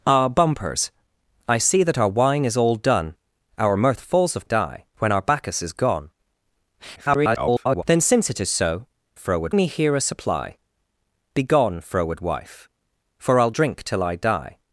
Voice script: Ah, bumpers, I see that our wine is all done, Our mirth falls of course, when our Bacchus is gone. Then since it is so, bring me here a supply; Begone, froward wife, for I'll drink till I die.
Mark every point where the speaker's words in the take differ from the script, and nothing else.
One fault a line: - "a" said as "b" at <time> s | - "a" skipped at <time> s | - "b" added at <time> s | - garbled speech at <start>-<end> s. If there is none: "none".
- "course" said as "die" at 4.4 s
- garbled speech at 7.0-7.8 s
- "bring" said as "froward" at 9.1 s